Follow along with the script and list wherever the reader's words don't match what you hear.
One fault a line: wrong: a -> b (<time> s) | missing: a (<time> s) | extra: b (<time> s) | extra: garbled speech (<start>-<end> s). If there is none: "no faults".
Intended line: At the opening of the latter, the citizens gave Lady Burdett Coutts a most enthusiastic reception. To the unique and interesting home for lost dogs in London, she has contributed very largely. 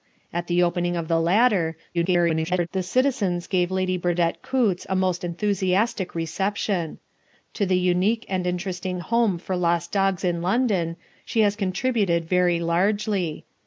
extra: garbled speech (1.9-2.7 s)